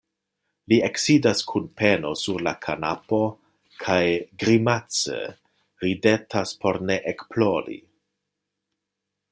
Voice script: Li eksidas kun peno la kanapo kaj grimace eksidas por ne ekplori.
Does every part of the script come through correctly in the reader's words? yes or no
no